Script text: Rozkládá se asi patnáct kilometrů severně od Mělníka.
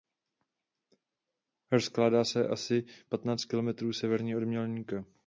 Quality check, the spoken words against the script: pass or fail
pass